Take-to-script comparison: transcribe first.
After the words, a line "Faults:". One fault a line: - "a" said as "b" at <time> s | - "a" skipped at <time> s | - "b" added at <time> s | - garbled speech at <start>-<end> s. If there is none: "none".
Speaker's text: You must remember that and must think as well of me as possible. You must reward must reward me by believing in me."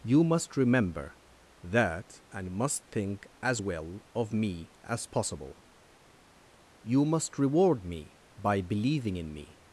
You must remember that and must think as well of me as possible. You must reward me by believing in me."
Faults:
- "must reward" skipped at 7.8 s